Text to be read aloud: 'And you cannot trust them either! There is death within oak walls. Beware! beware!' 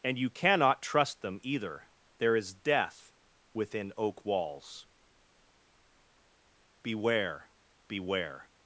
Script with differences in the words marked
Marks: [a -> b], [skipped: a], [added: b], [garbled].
'And you cannot trust them either! There is death within oak walls. Beware! beware!'